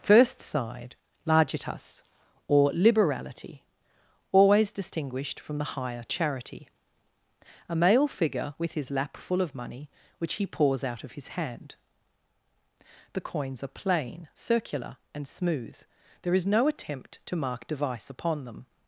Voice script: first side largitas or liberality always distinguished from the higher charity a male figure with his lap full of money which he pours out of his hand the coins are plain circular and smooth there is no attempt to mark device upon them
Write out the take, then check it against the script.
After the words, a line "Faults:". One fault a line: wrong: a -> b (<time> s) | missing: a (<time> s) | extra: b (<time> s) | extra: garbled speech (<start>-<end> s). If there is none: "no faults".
first side largitas or liberality always distinguished from the higher charity a male figure with his lap full of money which he pours out of his hand the coins are plain circular and smooth there is no attempt to mark device upon them
Faults:
no faults